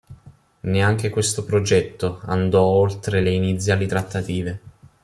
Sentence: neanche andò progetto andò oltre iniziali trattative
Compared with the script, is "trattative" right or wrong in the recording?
right